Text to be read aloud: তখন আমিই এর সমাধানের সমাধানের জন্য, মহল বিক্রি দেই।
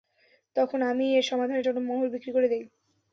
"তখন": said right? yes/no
yes